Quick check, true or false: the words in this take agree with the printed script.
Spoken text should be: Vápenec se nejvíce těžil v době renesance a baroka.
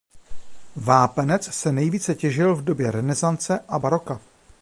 true